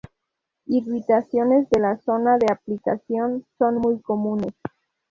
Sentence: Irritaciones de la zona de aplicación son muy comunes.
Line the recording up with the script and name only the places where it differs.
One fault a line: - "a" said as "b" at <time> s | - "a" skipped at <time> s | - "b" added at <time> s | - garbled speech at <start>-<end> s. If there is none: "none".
none